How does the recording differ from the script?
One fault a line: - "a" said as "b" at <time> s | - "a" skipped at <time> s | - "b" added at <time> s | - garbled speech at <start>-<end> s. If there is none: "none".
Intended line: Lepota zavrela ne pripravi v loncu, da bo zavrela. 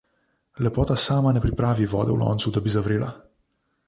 - "zavrela" said as "sama" at 0.9 s
- "vode" added at 1.9 s
- "bo" said as "bi" at 2.6 s